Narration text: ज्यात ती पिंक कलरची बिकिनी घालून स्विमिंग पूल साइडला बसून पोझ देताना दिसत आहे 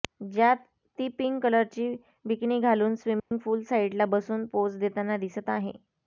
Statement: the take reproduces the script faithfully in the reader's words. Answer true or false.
true